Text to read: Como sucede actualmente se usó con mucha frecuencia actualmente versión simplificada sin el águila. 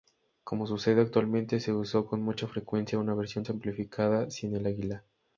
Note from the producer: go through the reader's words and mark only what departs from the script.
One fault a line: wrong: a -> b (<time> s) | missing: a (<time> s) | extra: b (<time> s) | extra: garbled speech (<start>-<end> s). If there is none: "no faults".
wrong: actualmente -> una (3.0 s)